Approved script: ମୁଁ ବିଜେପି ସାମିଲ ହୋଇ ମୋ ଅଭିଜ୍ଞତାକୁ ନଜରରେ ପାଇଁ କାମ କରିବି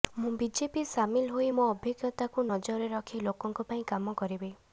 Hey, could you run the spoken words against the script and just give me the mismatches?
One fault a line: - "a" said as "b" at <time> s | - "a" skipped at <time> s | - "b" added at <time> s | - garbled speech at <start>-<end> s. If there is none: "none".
- "ରଖି ଲୋକଙ୍କ" added at 2.9 s